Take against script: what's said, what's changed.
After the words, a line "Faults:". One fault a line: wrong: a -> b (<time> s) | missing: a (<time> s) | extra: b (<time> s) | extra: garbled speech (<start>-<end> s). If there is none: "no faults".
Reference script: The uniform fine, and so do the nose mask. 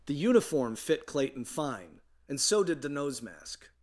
The uniform fit Clayton fine, and so did the nose mask.
Faults:
extra: fit Clayton (0.7 s)
wrong: do -> did (2.6 s)